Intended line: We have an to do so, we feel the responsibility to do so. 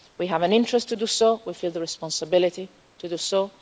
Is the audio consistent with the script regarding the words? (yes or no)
no